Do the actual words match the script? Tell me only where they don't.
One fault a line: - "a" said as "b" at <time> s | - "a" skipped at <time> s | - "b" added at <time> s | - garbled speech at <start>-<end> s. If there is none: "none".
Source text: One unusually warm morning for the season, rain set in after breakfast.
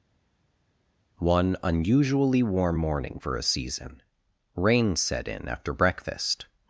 - "the" said as "a" at 3.4 s